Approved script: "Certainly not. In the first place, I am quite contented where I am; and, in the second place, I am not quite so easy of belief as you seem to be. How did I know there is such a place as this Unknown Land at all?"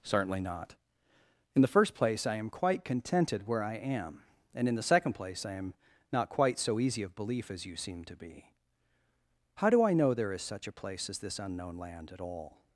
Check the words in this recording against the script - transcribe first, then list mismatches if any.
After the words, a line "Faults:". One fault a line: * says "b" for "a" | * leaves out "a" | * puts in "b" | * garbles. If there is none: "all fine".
"Certainly not. In the first place, I am quite contented where I am; and, in the second place, I am not quite so easy of belief as you seem to be. How do I know there is such a place as this Unknown Land at all?"
Faults:
* says "do" for "did"